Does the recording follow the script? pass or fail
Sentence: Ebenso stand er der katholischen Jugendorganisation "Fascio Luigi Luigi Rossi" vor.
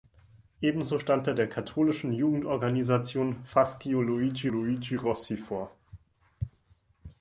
pass